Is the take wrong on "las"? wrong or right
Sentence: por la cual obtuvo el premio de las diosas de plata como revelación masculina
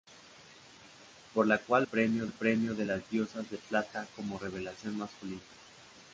right